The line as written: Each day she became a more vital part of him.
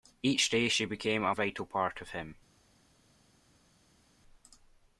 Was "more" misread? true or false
true